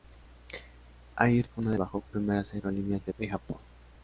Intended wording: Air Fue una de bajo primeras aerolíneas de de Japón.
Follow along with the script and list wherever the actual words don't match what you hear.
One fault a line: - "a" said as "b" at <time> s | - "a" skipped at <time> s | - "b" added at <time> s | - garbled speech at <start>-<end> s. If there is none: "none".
none